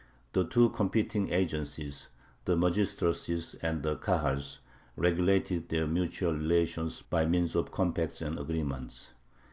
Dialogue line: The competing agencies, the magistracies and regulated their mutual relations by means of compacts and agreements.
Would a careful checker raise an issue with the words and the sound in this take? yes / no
yes